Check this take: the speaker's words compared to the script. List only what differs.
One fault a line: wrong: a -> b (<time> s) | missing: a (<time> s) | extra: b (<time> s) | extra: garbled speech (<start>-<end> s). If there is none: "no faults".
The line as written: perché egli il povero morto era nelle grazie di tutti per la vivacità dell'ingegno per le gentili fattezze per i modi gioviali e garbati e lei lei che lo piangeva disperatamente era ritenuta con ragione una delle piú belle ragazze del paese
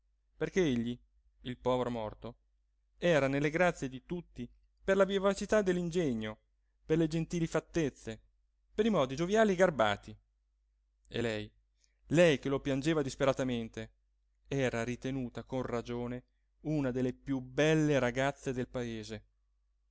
no faults